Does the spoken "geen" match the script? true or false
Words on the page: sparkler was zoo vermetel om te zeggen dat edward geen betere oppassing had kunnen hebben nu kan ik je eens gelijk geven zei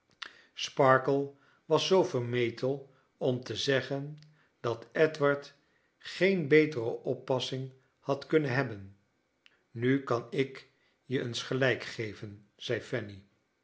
true